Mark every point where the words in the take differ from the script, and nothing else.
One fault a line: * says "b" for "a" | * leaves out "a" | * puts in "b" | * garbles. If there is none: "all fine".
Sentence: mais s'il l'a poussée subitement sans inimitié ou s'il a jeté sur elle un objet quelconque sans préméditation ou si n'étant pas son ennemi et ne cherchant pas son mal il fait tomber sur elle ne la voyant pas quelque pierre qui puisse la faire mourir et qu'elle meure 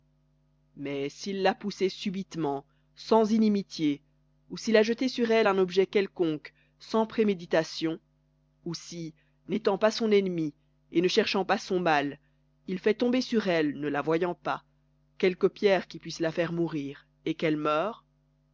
all fine